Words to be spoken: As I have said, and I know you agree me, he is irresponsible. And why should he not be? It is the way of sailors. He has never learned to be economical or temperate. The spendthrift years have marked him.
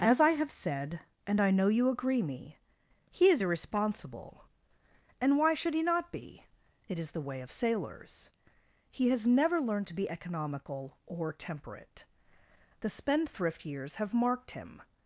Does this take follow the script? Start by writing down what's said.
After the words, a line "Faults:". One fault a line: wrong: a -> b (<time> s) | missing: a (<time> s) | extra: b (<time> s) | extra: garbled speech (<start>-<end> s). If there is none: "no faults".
As I have said, and I know you agree me, he is irresponsible. And why should he not be? It is the way of sailors. He has never learned to be economical or temperate. The spendthrift years have marked him.
Faults:
no faults